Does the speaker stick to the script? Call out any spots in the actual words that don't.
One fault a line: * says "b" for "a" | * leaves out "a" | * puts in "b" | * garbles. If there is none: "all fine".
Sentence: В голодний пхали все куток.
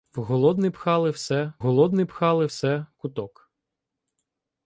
* puts in "голодний пхали все"